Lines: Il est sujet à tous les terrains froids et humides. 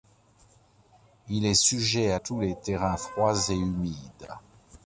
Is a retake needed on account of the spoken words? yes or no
no